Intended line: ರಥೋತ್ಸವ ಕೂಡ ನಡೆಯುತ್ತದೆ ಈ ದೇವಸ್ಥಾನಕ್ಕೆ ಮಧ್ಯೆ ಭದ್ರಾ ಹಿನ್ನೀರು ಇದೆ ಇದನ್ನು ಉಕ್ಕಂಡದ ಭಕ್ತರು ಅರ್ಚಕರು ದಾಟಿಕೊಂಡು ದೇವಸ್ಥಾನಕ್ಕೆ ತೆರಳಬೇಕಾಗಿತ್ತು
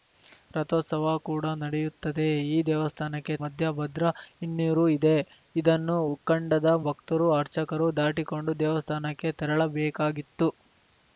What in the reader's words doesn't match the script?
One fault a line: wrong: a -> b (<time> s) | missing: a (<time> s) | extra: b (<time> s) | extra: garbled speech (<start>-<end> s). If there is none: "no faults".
no faults